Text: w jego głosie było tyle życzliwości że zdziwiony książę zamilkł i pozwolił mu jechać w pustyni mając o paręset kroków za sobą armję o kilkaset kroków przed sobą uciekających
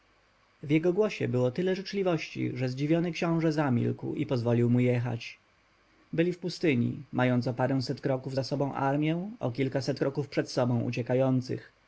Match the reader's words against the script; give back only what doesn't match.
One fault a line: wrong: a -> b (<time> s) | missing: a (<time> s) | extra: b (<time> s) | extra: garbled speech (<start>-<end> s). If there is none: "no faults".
extra: byli (6.1 s)